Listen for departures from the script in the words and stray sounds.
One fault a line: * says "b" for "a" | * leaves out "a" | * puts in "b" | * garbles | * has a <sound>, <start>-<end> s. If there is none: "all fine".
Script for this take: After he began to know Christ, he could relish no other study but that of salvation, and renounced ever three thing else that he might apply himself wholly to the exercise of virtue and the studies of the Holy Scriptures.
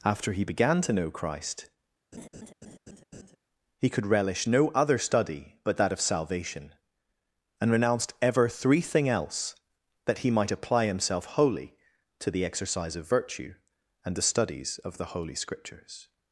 * has a laugh, 2.1-3.4 s